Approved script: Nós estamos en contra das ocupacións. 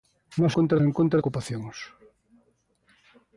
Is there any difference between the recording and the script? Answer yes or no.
yes